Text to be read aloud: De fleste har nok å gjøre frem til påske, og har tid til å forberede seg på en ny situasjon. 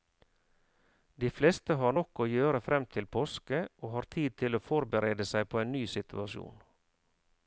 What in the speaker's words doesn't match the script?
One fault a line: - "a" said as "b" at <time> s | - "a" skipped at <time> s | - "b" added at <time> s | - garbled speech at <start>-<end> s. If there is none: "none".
none